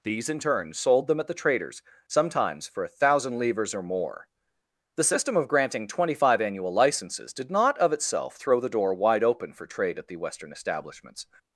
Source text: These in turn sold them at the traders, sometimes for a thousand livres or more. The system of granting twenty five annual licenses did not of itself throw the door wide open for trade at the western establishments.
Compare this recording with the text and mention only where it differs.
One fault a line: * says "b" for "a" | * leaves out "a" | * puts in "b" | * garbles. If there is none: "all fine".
all fine